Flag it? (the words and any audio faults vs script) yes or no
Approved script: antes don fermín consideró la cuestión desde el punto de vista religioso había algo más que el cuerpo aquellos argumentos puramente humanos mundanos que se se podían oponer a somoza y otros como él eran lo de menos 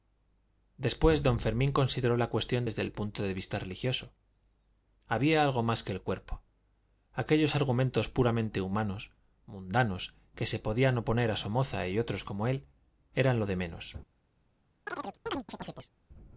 yes